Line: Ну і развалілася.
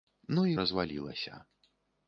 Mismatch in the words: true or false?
false